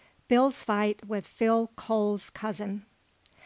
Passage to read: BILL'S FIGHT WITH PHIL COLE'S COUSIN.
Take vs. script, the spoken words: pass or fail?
pass